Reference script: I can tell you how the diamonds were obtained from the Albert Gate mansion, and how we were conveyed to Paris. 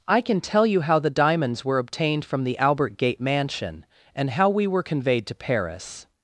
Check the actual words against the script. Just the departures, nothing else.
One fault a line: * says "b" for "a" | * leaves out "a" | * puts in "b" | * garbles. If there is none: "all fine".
all fine